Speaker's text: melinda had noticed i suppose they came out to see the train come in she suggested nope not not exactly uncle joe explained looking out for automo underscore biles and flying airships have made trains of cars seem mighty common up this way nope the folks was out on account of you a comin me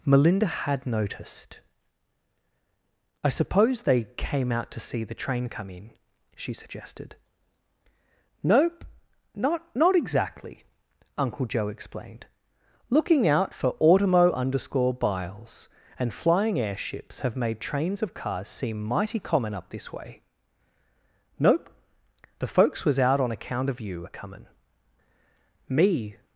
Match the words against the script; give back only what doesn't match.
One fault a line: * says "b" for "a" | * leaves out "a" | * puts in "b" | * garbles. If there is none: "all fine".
all fine